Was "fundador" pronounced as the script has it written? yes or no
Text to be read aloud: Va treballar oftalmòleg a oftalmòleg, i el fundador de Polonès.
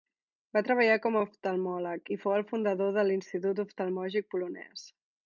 yes